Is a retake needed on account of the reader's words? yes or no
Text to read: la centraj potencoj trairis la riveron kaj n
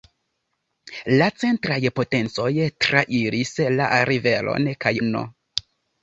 no